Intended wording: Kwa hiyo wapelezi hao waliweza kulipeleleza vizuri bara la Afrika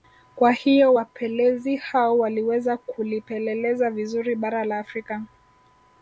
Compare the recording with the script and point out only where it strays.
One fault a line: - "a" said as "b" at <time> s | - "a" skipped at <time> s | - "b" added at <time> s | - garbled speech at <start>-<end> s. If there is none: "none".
none